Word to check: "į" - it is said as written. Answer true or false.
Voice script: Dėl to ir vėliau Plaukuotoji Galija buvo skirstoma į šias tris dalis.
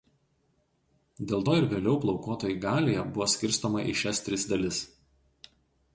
true